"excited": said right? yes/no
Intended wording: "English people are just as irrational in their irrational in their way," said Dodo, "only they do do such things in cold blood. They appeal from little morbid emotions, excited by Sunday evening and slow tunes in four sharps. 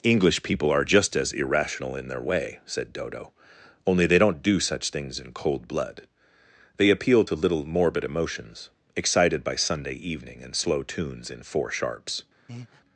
yes